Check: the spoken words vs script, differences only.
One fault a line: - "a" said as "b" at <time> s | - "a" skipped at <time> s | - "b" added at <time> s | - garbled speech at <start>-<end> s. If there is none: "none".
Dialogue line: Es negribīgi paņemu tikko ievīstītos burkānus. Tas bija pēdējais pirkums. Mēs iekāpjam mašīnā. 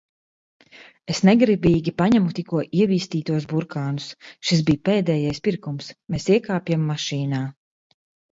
- "Tas" said as "Šis" at 4.5 s